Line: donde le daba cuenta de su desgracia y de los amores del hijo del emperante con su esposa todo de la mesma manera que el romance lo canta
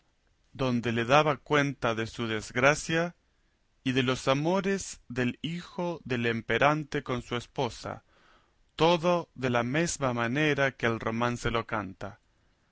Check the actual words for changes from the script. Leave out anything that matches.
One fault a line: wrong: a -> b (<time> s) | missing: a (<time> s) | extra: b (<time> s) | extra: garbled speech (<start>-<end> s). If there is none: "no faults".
no faults